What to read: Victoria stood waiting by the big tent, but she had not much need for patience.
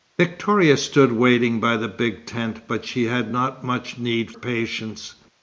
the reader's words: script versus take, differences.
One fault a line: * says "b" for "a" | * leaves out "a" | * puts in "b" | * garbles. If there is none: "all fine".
* leaves out "for"